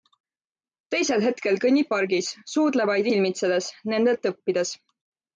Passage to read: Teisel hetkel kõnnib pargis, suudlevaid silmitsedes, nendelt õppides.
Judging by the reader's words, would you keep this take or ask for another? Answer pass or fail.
pass